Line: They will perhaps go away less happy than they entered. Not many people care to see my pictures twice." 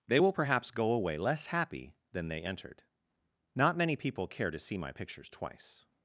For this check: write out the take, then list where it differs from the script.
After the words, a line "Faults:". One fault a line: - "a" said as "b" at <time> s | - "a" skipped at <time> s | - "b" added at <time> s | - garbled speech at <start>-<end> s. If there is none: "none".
They will perhaps go away less happy than they entered. Not many people care to see my pictures twice."
Faults:
none